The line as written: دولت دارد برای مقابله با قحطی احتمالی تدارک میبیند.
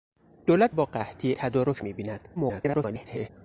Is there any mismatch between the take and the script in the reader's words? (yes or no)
yes